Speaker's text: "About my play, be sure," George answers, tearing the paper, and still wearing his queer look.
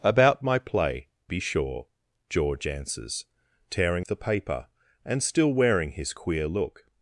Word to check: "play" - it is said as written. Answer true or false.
true